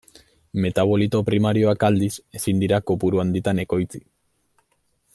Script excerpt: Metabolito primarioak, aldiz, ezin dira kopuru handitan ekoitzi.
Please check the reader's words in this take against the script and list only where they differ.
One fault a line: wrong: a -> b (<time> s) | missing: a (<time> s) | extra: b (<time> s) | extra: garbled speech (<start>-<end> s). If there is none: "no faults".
no faults